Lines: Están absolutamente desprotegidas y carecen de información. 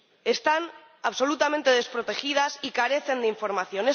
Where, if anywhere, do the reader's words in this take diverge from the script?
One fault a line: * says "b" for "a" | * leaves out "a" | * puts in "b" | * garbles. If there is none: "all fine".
all fine